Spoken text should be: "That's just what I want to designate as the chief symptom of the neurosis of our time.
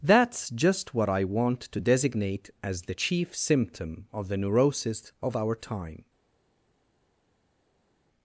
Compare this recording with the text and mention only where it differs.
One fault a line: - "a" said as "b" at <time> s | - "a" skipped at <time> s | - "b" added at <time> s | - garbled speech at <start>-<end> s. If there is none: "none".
none